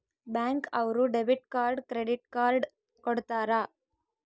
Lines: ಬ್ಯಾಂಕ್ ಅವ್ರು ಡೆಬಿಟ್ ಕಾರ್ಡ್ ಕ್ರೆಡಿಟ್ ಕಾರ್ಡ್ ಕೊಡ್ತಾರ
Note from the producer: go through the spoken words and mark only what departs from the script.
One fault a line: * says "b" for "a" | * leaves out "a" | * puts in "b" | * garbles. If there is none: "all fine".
all fine